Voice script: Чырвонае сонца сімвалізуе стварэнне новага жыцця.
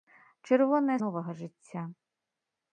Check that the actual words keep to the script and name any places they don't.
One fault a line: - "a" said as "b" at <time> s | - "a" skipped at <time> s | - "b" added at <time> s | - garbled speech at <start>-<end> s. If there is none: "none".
- "сонца сімвалізуе стварэнне" skipped at 0.9 s